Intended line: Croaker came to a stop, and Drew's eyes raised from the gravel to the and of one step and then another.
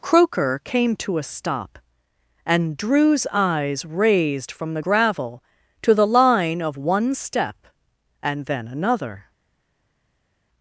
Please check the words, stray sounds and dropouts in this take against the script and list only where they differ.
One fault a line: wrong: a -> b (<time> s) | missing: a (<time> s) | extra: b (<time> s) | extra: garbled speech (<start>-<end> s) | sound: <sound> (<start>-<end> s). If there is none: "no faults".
wrong: and -> line (6.1 s)